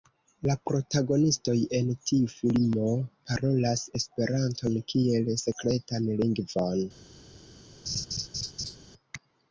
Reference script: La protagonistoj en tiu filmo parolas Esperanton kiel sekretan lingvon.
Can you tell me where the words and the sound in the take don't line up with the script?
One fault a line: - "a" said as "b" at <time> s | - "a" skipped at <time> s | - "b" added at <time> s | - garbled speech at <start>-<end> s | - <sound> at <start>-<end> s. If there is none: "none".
- laugh at 7.9-8.8 s